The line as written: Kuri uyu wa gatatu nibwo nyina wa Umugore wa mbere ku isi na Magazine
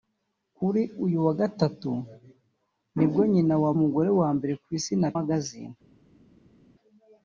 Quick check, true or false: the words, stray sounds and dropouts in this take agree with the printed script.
true